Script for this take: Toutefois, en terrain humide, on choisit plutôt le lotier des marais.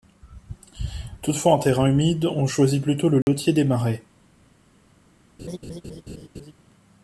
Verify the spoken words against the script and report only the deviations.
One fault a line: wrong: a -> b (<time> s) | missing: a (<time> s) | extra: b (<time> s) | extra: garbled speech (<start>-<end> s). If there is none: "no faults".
no faults